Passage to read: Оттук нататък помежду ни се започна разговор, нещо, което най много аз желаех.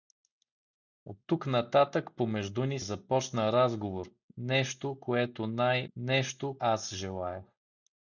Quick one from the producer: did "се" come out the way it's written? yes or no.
no